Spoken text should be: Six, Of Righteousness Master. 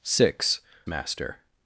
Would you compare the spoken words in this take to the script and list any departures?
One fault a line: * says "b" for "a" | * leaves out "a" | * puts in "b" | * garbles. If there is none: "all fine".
* leaves out "Of Righteousness"